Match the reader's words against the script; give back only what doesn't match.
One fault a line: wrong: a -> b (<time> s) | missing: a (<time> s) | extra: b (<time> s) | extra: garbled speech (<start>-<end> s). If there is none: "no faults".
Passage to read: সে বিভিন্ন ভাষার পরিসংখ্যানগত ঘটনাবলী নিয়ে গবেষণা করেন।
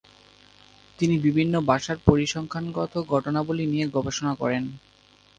wrong: সে -> তিনি (1.0 s)